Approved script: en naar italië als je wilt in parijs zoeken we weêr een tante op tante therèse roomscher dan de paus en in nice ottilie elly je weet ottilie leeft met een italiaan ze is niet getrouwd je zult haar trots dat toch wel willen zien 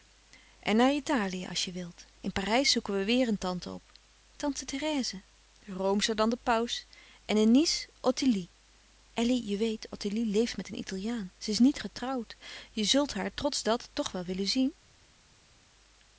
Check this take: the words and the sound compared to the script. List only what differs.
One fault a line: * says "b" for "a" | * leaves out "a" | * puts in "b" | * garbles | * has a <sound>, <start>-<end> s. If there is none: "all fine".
all fine